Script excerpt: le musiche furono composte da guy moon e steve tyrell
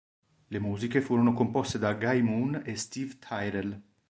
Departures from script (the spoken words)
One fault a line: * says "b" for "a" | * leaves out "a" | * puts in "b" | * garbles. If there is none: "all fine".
all fine